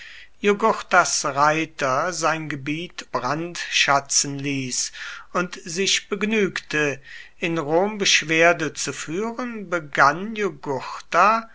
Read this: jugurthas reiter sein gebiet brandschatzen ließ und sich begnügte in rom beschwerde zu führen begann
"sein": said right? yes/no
yes